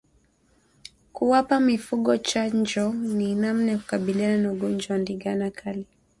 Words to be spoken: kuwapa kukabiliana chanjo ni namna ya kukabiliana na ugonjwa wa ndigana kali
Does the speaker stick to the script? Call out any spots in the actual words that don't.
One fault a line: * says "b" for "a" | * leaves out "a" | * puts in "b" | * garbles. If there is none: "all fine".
* says "mifugo" for "kukabiliana"